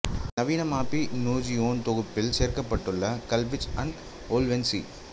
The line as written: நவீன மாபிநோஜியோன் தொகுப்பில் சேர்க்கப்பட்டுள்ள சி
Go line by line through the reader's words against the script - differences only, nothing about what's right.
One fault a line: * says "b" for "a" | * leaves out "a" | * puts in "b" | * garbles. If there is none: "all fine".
* puts in "கல்விச் அண்ட் ஓல்வென்"